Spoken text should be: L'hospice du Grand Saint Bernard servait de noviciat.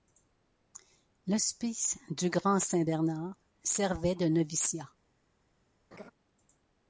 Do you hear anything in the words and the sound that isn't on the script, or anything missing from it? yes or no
yes